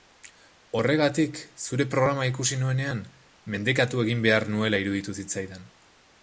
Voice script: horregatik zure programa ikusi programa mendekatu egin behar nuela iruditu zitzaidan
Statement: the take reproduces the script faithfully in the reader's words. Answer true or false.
false